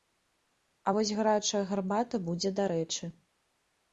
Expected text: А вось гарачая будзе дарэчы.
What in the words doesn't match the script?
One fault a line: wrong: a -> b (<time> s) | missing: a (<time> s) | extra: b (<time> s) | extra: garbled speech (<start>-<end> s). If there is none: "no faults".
extra: гарбата (1.7 s)